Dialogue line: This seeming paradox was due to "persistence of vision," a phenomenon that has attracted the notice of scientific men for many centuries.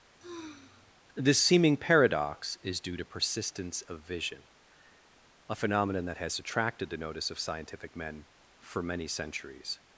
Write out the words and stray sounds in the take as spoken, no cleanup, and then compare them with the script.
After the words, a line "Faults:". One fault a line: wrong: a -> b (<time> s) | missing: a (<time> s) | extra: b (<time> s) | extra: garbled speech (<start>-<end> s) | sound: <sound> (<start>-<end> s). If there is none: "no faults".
This seeming paradox is due to "persistence of vision," a phenomenon that has attracted the notice of scientific men for many centuries.
Faults:
sound: sigh (0.2-0.9 s)
wrong: was -> is (2.6 s)